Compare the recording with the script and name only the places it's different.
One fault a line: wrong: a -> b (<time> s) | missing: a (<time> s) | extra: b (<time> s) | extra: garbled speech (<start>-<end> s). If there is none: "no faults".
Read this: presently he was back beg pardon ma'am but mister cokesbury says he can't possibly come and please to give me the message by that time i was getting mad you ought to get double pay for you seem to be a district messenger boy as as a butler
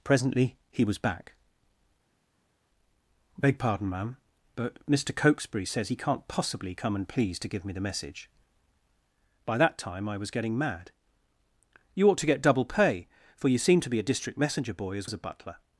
no faults